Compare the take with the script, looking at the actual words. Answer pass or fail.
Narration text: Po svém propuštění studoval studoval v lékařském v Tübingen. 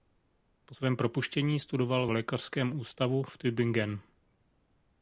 fail